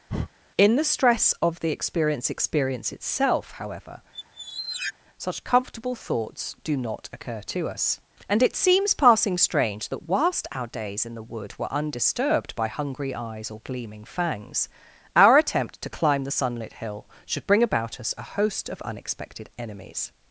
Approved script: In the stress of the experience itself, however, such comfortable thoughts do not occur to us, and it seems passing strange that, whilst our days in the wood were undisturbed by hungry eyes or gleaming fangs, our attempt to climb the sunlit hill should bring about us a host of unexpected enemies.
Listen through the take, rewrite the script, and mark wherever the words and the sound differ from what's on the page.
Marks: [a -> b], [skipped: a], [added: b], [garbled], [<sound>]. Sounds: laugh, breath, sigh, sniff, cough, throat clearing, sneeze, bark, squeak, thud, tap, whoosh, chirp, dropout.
[breath] In the stress of the experience [added: experience] itself, however, [squeak] such comfortable thoughts do not occur to us, and it seems passing strange that, whilst our days in the wood were undisturbed by hungry eyes or gleaming fangs, our attempt to climb the sunlit hill should bring about us a host of unexpected enemies.